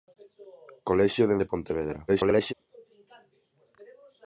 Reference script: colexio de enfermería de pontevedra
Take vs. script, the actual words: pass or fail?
fail